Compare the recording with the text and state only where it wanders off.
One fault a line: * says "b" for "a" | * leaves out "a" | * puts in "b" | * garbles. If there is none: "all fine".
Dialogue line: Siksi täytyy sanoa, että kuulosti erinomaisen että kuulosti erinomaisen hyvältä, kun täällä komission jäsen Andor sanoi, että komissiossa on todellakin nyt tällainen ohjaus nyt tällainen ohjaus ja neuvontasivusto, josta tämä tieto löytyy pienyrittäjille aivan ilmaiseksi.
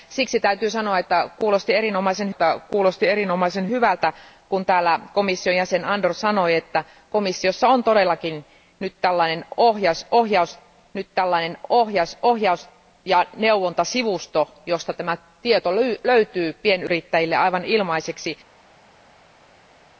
all fine